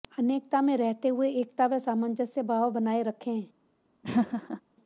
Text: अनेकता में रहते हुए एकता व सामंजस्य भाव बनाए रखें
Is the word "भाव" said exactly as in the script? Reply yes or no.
yes